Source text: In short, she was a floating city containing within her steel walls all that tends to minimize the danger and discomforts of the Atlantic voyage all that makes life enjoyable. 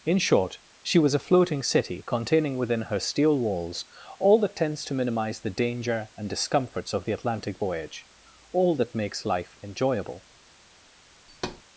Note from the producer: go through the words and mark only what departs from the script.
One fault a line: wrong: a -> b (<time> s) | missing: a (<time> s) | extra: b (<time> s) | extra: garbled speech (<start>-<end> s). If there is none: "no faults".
no faults